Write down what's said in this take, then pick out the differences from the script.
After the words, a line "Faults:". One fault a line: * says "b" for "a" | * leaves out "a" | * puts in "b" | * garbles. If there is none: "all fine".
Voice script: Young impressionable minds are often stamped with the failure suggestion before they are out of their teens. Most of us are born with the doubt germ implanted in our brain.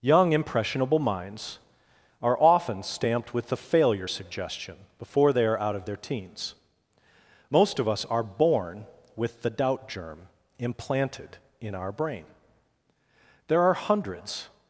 Young impressionable minds are often stamped with the failure suggestion before they are out of their teens. Most of us are born with the doubt germ implanted in our brain. There are hundreds
Faults:
* puts in "There are hundreds"